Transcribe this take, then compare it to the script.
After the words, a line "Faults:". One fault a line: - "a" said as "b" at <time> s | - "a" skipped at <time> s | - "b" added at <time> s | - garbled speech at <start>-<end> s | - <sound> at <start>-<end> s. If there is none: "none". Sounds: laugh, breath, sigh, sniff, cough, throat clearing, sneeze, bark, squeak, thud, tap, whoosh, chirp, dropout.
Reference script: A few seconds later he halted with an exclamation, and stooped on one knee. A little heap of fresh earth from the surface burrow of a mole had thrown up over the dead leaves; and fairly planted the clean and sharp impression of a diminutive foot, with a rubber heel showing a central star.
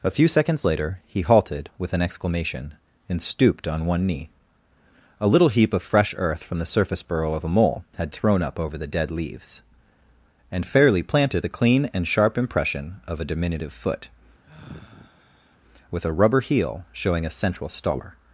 A few seconds later he halted with an exclamation, and stooped on one knee. A little heap of fresh earth from the surface burrow of a mole had thrown up over the dead leaves; and fairly planted the clean and sharp impression of a diminutive foot, with a rubber heel showing a central star.
Faults:
- sigh at 14.4-15.6 s